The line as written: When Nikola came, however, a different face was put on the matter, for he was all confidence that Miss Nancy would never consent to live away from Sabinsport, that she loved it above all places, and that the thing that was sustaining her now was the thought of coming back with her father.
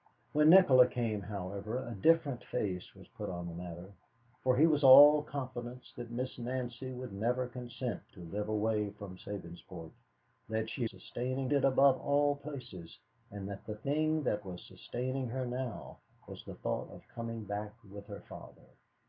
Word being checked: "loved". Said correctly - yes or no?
no